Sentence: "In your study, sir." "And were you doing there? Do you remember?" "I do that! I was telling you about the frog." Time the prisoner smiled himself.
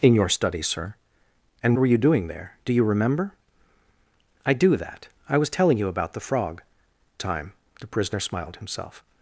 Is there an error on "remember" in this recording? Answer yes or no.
no